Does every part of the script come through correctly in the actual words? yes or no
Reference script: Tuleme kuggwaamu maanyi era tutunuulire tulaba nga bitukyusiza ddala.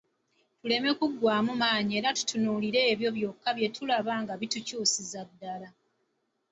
no